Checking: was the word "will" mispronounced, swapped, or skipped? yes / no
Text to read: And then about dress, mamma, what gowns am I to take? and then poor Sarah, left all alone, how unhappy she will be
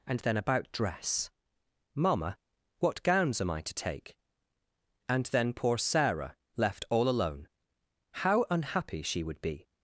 yes